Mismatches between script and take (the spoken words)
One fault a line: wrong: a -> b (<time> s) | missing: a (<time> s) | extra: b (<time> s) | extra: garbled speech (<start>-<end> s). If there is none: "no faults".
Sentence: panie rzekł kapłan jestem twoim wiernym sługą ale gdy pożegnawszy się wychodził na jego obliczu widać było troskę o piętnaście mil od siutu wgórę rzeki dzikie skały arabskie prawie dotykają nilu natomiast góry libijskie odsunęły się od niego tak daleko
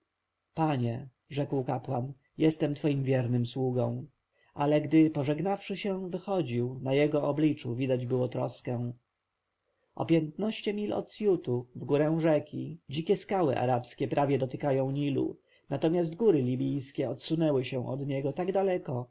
no faults